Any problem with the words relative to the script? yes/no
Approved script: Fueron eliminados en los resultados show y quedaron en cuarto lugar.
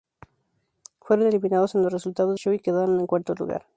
no